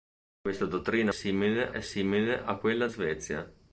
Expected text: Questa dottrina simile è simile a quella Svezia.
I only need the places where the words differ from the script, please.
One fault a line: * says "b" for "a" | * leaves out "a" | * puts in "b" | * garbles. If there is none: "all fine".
all fine